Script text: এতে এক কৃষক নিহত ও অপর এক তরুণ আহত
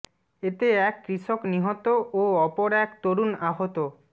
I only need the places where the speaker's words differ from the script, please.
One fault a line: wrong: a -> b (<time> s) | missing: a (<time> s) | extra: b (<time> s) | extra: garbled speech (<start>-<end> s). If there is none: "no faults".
no faults